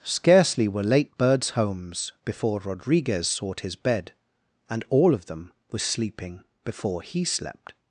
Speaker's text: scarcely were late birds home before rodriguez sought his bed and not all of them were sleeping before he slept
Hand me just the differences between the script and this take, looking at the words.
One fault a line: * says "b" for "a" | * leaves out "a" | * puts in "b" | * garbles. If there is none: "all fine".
* says "homes" for "home"
* leaves out "not"